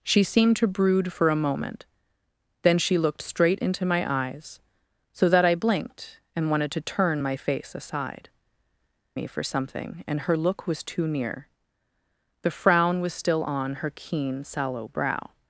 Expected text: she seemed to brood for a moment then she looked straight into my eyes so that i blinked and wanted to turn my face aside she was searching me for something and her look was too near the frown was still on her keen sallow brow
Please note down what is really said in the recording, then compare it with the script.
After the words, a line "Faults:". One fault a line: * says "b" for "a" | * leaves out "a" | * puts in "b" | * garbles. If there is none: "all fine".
she seemed to brood for a moment then she looked straight into my eyes so that i blinked and wanted to turn my face aside me for something and her look was too near the frown was still on her keen sallow brow
Faults:
* leaves out "she was searching"